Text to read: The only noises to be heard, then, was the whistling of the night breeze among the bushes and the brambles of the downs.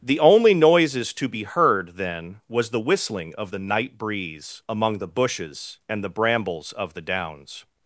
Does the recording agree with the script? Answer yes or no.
yes